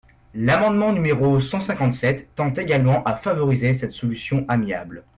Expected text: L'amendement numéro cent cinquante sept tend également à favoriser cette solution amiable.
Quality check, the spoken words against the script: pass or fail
pass